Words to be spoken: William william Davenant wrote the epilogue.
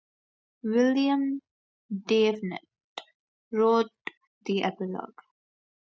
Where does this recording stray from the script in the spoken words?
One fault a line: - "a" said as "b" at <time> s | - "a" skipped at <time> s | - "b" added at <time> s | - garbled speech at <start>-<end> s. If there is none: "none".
- "william" skipped at 1.4 s